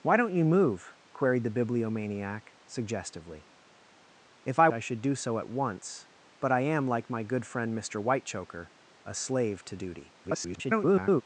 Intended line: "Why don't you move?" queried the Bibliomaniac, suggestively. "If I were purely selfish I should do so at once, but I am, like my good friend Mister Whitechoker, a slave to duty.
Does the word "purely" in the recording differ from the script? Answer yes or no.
yes